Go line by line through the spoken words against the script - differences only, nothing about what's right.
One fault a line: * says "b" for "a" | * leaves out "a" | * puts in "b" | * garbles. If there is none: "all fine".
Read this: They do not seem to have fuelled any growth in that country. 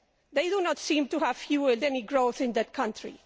all fine